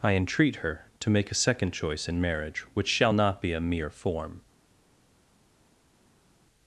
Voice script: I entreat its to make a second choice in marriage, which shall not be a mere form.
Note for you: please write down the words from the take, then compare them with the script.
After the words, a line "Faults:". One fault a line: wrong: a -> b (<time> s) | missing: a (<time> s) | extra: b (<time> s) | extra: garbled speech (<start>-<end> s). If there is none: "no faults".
I entreat her to make a second choice in marriage, which shall not be a mere form.
Faults:
wrong: its -> her (0.6 s)